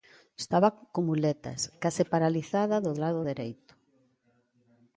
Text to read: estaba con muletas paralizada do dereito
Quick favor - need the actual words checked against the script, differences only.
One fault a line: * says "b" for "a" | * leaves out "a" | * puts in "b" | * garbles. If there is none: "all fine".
* puts in "case"
* puts in "lado"